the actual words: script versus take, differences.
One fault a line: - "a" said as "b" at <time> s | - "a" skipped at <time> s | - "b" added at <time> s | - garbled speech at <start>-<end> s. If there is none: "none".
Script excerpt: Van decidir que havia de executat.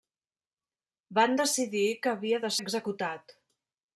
none